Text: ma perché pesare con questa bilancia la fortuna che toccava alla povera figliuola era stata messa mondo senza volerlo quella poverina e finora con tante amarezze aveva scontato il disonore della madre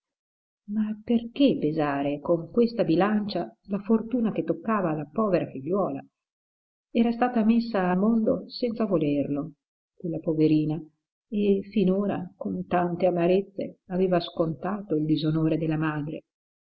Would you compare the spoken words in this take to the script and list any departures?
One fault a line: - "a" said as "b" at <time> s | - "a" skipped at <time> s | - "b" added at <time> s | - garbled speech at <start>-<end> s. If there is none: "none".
none